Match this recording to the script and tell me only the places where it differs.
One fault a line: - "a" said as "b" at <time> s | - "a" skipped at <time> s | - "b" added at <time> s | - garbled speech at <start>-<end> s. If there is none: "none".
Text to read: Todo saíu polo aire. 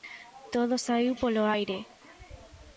none